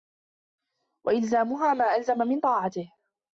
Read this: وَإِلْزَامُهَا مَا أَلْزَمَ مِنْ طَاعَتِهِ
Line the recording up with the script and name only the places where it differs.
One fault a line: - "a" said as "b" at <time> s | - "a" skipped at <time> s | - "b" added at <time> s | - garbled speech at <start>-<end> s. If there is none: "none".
none